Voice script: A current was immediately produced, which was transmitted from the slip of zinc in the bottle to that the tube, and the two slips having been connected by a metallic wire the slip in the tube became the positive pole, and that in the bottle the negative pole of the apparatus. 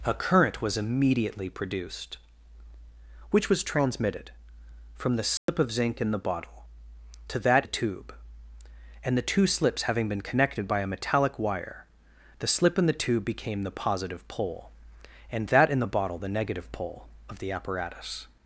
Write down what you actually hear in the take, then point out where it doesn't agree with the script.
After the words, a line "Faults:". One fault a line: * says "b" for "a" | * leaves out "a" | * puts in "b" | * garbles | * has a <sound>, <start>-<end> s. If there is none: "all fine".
A current was immediately produced, which was transmitted from the slip of zinc in the bottle to that the tube, and the two slips having been connected by a metallic wire the slip in the tube became the positive pole, and that in the bottle the negative pole of the apparatus.
Faults:
* has a dropout, 5.4-5.5 s